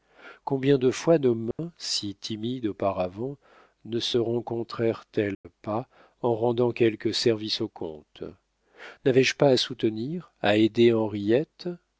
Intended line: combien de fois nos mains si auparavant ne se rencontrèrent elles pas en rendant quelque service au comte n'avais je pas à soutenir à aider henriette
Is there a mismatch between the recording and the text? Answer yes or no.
yes